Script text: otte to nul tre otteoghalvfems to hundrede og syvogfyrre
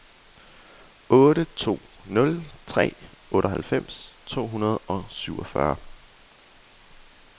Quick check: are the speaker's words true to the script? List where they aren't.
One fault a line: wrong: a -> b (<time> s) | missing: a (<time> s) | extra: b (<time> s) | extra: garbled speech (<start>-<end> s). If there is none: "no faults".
no faults